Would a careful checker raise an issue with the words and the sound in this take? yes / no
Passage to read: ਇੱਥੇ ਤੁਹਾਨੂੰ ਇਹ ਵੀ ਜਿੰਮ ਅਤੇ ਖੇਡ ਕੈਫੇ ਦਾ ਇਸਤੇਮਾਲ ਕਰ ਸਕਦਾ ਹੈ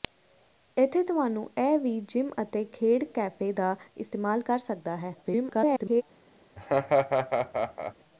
yes